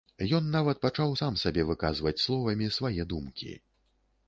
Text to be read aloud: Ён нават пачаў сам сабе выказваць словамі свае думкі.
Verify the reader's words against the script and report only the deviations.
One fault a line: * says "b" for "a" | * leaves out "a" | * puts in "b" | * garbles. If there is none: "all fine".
all fine